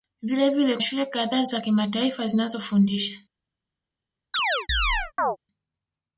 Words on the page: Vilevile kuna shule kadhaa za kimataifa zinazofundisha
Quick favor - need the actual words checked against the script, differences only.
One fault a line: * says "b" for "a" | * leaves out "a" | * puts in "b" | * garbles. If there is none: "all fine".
* leaves out "kuna"